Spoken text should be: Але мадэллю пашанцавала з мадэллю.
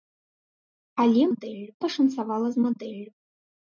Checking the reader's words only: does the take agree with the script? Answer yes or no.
yes